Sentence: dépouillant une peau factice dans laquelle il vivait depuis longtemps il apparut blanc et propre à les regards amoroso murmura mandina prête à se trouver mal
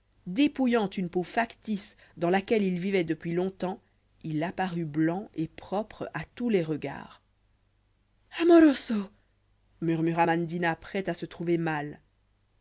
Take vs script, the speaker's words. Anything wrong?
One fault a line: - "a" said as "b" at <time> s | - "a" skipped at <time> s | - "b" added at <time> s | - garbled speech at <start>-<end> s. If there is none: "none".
- "tous" added at 6.4 s